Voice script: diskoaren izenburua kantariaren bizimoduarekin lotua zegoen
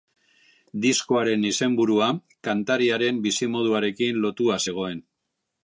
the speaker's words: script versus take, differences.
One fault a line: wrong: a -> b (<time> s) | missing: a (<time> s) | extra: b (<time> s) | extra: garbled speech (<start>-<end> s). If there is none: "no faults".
no faults